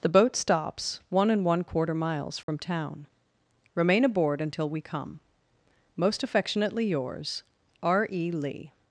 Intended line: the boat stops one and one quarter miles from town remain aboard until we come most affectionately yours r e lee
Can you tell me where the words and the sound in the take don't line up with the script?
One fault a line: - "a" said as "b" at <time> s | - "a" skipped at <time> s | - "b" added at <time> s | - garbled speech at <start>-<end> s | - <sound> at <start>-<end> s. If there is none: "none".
- dropout at 2.4-2.5 s